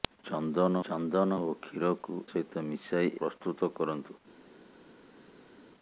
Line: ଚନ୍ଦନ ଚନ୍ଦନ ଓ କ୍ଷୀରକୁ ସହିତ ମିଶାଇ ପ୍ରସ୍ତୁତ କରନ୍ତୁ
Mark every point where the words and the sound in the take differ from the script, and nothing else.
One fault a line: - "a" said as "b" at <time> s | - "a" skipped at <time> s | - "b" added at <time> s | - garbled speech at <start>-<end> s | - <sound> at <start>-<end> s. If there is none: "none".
none